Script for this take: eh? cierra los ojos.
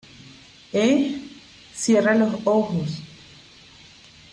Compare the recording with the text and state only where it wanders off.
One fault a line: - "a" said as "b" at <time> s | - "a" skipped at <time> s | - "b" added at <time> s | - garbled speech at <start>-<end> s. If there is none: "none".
none